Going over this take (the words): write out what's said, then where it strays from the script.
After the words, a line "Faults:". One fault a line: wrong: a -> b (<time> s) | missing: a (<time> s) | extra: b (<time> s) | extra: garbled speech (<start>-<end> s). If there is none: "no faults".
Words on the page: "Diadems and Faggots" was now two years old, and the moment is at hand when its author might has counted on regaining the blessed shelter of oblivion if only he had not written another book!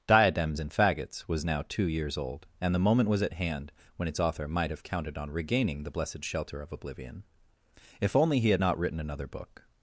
"Diadems and Faggots" was now two years old, and the moment was at hand when its author might have counted on regaining the blessed shelter of oblivion if only he had not written another book!
Faults:
wrong: is -> was (3.1 s)
wrong: has -> have (4.7 s)